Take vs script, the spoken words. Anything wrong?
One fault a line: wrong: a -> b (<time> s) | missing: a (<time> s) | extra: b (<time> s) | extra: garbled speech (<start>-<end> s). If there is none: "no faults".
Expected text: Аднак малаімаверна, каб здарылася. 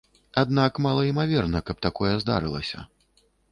extra: такое (1.9 s)